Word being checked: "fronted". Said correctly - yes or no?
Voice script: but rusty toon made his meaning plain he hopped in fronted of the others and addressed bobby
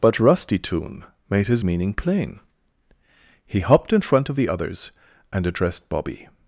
no